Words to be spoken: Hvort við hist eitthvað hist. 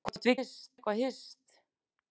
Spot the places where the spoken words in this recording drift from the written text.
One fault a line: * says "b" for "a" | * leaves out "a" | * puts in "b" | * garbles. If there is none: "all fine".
all fine